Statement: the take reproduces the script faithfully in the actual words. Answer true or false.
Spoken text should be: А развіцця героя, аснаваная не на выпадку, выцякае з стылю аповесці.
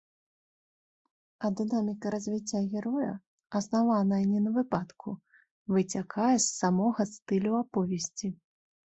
false